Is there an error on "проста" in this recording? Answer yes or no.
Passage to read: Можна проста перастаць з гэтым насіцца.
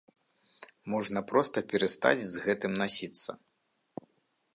no